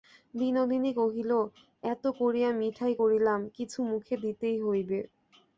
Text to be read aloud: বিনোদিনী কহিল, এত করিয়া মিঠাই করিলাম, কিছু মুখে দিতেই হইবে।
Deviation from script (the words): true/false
false